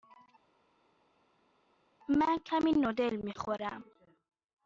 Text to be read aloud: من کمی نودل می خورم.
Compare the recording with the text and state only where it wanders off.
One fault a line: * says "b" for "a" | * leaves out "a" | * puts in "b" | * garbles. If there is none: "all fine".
all fine